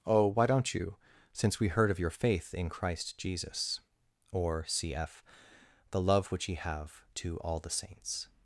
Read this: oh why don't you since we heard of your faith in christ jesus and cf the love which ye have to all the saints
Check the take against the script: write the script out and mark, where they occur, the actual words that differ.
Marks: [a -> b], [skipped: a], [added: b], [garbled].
oh why don't you since we heard of your faith in christ jesus [and -> or] cf the love which ye have to all the saints